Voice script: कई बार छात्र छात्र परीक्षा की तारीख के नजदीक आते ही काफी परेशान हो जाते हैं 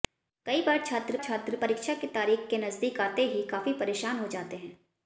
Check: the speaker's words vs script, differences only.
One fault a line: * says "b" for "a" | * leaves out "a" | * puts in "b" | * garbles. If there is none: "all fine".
all fine